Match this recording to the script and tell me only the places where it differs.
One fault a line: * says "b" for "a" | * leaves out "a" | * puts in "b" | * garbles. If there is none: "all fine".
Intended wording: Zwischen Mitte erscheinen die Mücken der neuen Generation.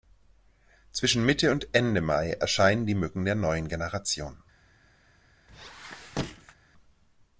* puts in "und Ende Mai"